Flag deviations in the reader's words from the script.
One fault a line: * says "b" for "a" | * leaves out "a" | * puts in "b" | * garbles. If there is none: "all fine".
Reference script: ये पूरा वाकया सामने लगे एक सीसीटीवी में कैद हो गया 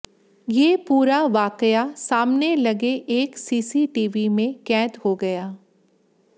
all fine